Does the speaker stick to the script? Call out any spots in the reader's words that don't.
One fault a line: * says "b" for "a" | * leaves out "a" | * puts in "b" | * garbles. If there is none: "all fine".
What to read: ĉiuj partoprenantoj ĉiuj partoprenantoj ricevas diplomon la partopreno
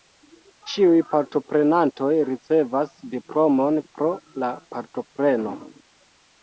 * leaves out "ĉiuj partoprenantoj"
* puts in "pro"